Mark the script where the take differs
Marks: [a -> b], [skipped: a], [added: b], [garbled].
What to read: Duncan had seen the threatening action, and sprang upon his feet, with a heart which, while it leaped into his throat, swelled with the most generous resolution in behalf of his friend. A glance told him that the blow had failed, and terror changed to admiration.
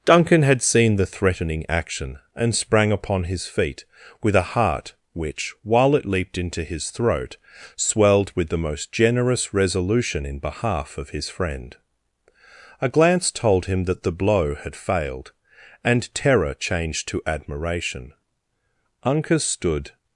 Duncan had seen the threatening action, and sprang upon his feet, with a heart which, while it leaped into his throat, swelled with the most generous resolution in behalf of his friend. A glance told him that the blow had failed, and terror changed to admiration. [added: Uncas stood]